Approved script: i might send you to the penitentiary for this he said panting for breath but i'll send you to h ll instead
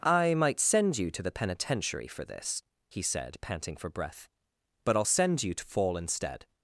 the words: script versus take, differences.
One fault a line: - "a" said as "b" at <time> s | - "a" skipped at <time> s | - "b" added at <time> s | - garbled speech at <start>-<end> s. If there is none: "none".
- "h ll" said as "fall" at 5.6 s